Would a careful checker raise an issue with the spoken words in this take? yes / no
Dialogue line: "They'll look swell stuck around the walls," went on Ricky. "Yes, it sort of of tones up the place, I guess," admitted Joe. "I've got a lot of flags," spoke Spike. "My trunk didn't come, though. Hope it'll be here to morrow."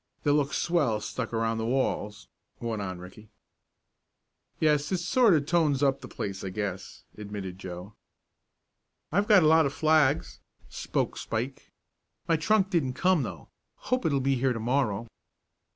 yes